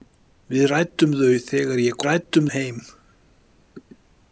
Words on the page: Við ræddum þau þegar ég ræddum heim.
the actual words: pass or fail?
pass